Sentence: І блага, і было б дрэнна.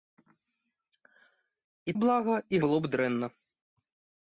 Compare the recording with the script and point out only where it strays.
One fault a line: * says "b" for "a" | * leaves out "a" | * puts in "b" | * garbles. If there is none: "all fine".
all fine